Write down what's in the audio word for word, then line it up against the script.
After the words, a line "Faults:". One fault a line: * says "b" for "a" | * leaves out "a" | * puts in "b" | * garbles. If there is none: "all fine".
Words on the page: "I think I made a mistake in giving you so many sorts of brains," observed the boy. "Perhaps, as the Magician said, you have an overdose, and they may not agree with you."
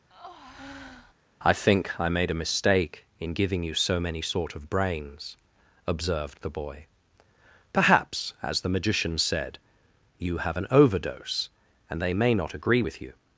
"I think I made a mistake in giving you so many sort of brains," observed the boy. "Perhaps, as the Magician said, you have an overdose, and they may not agree with you."
Faults:
* says "sort" for "sorts"